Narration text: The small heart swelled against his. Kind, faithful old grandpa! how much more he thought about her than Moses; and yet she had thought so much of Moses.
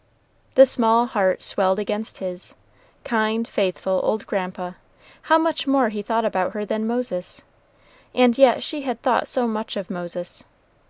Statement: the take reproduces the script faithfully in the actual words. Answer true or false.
true